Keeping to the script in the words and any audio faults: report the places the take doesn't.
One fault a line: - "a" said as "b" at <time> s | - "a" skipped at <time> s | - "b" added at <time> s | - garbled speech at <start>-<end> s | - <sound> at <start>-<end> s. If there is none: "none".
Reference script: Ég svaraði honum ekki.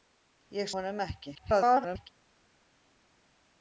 - "svaraði" skipped at 0.7 s
- garbled speech at 1.3-2.1 s